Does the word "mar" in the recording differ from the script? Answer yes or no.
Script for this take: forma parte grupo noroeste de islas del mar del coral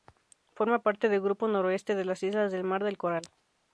no